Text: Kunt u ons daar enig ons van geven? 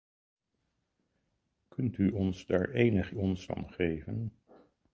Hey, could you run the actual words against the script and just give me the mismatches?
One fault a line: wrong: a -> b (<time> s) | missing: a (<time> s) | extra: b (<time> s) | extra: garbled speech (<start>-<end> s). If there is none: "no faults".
no faults